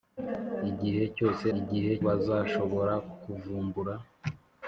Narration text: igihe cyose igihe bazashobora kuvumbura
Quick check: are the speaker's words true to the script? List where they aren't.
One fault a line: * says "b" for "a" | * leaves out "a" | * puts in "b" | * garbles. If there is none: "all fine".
all fine